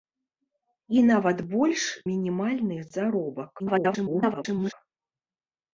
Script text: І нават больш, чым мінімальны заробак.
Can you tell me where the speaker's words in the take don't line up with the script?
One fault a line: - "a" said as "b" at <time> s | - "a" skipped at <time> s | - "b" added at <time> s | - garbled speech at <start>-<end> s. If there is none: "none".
- "чым" skipped at 1.8 s
- garbled speech at 3.6-4.7 s